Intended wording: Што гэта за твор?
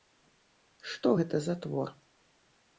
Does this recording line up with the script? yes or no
yes